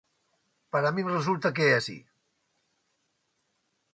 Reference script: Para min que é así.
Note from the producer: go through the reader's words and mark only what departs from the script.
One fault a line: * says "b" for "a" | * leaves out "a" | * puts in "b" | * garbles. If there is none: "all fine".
* puts in "resulta"